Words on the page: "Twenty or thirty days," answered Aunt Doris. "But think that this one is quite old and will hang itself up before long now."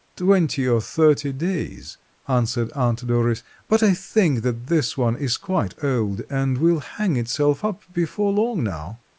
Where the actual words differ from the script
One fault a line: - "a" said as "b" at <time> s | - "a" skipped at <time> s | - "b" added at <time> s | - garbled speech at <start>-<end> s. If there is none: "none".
- "I" added at 3.8 s